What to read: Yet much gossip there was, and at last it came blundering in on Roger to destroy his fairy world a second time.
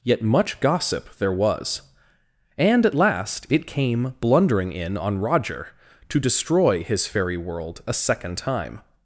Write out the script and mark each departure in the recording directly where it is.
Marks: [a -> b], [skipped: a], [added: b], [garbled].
Yet much gossip there was, and at last it came blundering in on Roger to destroy his fairy world a second time.